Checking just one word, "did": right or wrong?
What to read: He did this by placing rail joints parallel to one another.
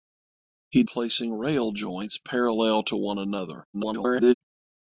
wrong